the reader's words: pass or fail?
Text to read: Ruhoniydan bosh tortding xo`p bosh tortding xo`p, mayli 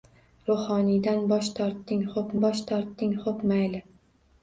pass